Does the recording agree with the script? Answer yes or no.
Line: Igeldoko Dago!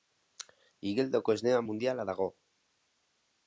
no